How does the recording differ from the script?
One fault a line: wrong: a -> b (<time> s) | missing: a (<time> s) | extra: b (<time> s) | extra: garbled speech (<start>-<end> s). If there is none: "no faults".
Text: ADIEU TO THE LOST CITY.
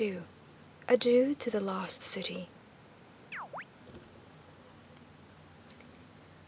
no faults